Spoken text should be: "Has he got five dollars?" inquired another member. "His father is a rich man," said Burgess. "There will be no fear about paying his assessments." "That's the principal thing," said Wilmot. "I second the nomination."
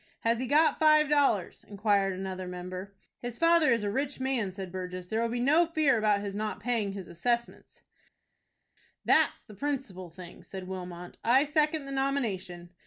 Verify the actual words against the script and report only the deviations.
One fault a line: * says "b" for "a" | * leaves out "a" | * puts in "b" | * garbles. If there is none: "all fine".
* puts in "his not"